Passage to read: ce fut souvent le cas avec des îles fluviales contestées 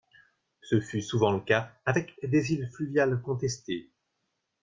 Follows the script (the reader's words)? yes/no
yes